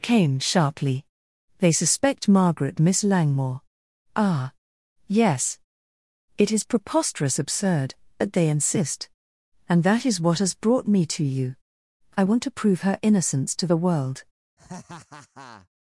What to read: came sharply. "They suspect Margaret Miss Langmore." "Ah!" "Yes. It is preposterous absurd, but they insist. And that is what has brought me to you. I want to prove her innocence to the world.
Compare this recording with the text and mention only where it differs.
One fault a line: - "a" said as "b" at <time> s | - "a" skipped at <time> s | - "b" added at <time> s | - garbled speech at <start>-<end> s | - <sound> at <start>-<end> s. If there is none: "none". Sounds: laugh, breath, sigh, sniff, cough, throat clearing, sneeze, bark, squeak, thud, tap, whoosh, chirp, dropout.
- laugh at 14.6-15.7 s